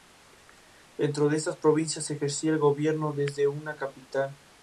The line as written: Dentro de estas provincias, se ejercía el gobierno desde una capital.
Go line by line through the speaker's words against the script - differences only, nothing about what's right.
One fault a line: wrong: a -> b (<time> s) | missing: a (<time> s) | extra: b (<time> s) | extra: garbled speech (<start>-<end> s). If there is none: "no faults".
no faults